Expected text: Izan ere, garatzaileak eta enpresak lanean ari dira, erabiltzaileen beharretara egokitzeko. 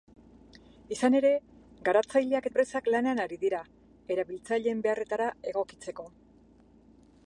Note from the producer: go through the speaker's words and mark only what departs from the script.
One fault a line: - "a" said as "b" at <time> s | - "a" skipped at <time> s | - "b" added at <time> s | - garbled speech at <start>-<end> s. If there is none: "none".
- "eta" skipped at 2.5 s